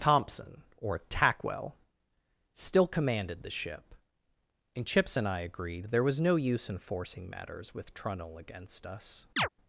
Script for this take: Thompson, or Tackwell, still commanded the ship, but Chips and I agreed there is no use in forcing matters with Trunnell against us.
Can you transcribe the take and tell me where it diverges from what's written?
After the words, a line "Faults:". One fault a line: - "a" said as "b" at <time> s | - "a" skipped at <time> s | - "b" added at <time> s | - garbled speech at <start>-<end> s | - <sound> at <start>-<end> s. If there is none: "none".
Thompson, or Tackwell, still commanded the ship, and Chips and I agreed there was no use in forcing matters with Trunnell against us.
Faults:
- "but" said as "and" at 4.8 s
- "is" said as "was" at 6.0 s
- chirp at 9.4-9.5 s